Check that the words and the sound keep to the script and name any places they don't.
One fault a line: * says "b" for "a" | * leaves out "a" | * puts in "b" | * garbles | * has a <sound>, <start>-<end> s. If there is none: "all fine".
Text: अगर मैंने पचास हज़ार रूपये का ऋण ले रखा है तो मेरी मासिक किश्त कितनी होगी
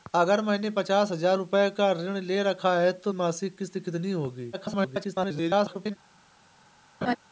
* leaves out "मेरी"
* garbles
* has a laugh, 7.0-7.2 s